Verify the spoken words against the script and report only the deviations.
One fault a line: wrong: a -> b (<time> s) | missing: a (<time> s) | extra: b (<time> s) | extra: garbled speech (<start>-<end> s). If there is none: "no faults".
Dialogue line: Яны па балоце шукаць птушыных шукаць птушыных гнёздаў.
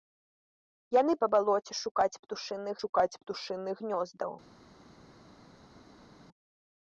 no faults